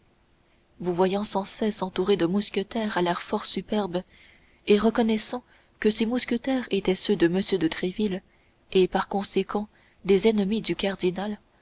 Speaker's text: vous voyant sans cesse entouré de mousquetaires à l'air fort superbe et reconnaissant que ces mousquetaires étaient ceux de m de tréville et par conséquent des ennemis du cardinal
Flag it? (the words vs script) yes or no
no